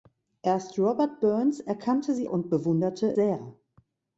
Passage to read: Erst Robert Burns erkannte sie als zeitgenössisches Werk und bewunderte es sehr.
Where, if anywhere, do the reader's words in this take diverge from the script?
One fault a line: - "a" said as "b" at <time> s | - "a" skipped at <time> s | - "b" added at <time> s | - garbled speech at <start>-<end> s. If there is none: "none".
- "als zeitgenössisches Werk" skipped at 2.3 s
- "es" skipped at 3.1 s